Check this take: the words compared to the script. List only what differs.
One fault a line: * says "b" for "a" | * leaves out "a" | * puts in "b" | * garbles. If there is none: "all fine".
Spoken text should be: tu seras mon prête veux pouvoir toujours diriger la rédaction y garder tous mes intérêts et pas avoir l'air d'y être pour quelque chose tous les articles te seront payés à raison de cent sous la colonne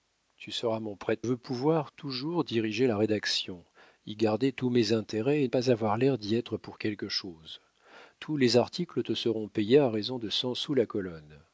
all fine